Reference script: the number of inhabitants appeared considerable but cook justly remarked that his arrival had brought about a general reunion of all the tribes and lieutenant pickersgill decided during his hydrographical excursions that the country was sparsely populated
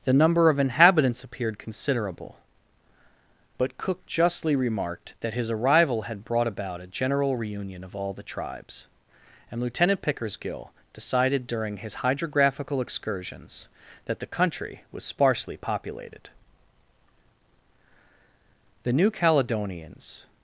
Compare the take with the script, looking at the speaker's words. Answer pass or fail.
fail